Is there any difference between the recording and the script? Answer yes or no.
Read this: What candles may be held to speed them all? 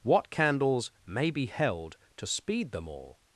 no